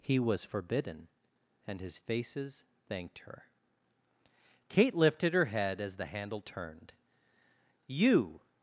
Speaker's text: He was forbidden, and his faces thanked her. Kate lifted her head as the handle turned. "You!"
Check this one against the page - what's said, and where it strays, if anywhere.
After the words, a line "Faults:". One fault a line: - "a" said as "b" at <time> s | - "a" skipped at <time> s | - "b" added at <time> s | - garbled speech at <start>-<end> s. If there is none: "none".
He was forbidden, and his faces thanked her. Kate lifted her head as the handle turned. "You!"
Faults:
none